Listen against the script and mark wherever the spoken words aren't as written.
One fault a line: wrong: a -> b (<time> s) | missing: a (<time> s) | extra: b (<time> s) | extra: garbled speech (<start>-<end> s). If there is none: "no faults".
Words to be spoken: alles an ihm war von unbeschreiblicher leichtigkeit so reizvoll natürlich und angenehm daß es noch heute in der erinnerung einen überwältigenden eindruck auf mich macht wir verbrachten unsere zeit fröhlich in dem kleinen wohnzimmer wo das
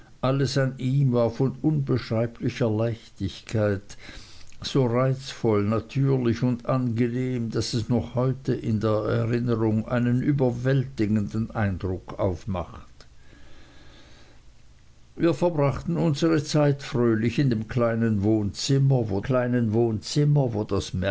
missing: mich (12.5 s)
extra: kleinen wohnzimmer wo (19.2 s)